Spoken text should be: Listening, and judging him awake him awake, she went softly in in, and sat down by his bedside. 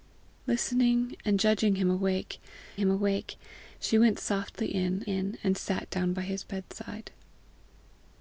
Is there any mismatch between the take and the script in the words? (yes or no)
no